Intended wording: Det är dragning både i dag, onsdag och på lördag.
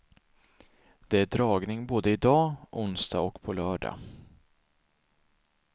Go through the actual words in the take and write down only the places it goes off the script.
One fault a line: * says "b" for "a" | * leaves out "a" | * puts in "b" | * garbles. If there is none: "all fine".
all fine